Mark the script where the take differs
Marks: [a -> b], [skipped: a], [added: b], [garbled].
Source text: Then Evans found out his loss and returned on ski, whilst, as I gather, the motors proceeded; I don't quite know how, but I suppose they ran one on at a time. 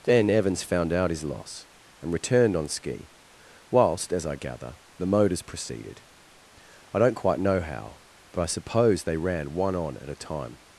Then Evans found out his loss and returned on ski, whilst, as I gather, the motors proceeded; I don't quite know how, but I suppose they ran one on at a time.